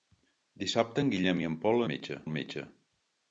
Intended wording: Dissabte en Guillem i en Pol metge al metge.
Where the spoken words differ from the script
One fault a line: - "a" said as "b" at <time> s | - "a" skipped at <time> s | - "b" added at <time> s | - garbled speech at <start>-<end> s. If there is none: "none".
none